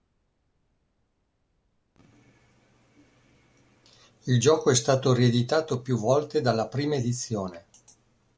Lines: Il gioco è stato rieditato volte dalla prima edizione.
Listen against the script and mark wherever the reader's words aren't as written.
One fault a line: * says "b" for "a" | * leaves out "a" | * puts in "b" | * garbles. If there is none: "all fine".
* puts in "più"